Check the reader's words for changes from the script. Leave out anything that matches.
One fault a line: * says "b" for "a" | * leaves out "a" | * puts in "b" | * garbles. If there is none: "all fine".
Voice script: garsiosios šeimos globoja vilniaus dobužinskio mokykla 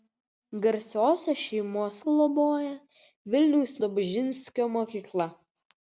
all fine